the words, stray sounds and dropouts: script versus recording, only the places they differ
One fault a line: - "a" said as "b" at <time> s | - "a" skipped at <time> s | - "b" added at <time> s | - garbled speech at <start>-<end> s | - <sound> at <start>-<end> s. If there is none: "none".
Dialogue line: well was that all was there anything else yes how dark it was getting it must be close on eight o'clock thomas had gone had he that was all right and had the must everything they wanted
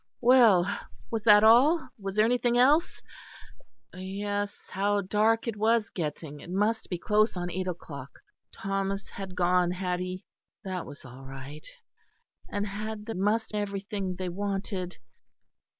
none